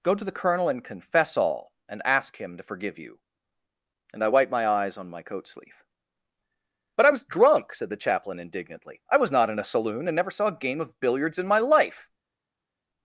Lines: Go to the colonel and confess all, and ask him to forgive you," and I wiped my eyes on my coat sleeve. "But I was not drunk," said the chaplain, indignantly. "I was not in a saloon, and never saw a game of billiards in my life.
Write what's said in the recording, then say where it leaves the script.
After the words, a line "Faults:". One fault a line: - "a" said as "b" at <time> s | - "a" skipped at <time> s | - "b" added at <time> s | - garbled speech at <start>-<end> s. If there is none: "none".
Go to the colonel and confess all, and ask him to forgive you," and I wiped my eyes on my coat sleeve. "But I was drunk," said the chaplain, indignantly. "I was not in a saloon, and never saw a game of billiards in my life.
Faults:
- "not" skipped at 7.2 s